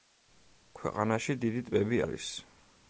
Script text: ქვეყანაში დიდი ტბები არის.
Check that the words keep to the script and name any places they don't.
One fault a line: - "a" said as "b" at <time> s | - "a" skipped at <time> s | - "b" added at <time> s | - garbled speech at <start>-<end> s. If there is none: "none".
none